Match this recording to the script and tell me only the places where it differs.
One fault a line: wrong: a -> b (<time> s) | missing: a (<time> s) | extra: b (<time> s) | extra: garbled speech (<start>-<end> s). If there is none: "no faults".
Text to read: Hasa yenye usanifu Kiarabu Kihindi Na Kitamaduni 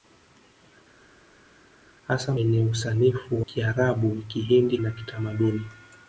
no faults